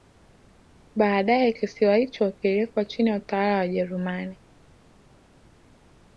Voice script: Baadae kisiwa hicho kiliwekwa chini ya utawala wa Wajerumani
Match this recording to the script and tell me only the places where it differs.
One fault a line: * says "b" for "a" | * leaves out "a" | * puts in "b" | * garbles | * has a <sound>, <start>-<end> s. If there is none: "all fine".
all fine